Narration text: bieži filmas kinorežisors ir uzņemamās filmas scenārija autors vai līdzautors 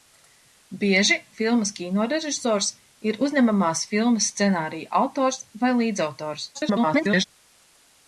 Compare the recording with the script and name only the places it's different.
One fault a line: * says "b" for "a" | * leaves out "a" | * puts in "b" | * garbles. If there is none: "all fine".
* garbles